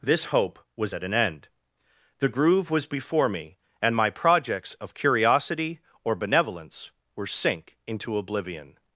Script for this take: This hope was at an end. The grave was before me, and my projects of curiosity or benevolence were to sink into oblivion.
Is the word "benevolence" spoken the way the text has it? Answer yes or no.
yes